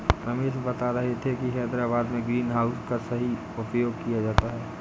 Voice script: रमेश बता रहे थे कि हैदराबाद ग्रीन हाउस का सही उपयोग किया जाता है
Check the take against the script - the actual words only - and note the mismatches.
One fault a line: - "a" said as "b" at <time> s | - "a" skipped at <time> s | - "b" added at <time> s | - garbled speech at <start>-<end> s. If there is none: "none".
- "में" added at 2.1 s